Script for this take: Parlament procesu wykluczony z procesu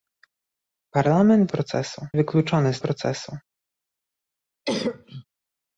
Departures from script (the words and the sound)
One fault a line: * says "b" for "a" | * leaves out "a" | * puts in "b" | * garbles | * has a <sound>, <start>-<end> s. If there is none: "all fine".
* has a cough, 4.6-5.2 s